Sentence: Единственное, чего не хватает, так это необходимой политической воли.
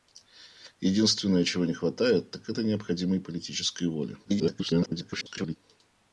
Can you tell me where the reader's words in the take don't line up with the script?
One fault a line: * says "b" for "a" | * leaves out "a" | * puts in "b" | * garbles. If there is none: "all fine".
* garbles